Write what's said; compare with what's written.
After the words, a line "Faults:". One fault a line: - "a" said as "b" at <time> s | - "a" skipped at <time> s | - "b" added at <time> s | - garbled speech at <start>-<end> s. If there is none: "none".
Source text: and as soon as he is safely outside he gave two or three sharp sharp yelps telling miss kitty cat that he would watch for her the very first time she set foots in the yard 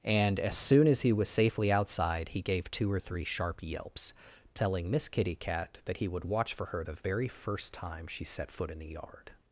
and as soon as he was safely outside he gave two or three sharp yelps telling miss kitty cat that he would watch for her the very first time she set foot in the yard
Faults:
- "is" said as "was" at 1.1 s
- "sharp" skipped at 3.6 s
- "foots" said as "foot" at 8.5 s